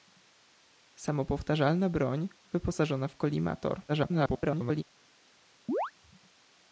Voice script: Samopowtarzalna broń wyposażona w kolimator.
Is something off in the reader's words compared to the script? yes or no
yes